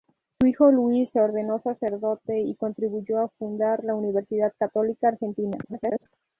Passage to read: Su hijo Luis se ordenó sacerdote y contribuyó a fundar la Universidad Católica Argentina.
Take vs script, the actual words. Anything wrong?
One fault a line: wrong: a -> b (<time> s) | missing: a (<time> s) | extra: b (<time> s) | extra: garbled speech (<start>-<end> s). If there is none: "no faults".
extra: garbled speech (5.6-6.1 s)